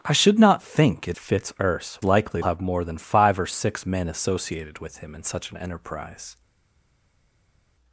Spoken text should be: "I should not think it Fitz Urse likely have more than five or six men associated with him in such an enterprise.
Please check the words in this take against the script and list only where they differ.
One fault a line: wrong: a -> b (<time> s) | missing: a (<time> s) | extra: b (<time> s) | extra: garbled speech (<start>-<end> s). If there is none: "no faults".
no faults